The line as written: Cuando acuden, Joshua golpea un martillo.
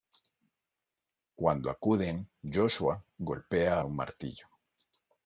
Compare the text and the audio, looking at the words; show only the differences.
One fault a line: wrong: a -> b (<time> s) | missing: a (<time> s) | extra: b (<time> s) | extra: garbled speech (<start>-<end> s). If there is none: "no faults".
no faults